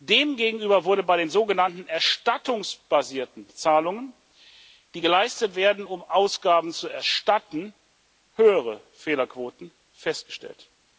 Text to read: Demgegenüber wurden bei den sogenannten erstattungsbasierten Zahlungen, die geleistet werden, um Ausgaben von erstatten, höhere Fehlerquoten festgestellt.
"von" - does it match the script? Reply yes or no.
no